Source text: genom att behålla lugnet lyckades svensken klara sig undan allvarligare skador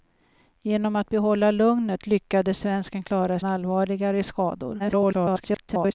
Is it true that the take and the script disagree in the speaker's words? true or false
true